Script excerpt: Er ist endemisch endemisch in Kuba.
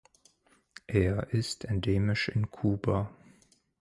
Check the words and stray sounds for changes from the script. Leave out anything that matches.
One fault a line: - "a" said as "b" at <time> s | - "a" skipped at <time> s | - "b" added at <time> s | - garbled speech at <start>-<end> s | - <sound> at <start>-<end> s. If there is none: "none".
- "endemisch" skipped at 2.3 s